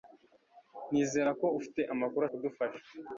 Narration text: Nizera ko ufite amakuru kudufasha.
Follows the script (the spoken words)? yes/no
yes